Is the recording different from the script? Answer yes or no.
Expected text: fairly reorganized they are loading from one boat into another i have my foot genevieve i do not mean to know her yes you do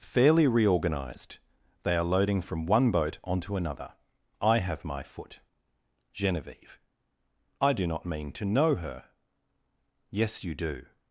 yes